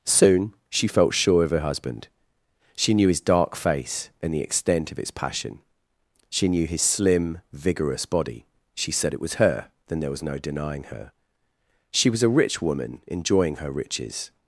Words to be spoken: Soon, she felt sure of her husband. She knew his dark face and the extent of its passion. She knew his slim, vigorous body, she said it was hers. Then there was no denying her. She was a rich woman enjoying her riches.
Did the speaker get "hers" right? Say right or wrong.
wrong